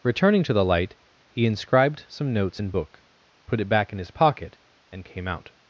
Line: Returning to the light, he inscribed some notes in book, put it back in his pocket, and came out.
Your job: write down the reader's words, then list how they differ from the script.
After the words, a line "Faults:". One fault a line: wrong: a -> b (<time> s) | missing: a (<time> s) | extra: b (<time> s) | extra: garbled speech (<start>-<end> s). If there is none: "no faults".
Returning to the light, he inscribed some notes in book, put it back in his pocket, and came out.
Faults:
no faults